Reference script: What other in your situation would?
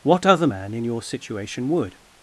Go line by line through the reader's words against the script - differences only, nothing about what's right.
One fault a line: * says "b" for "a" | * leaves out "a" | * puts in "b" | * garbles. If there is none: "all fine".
* puts in "man"